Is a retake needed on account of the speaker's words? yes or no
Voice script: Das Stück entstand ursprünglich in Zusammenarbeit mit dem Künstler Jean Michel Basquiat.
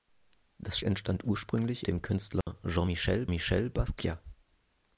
yes